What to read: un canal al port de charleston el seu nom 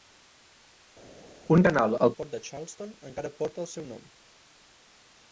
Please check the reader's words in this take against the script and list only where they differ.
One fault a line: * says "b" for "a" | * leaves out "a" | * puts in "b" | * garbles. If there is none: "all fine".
* puts in "encara porta"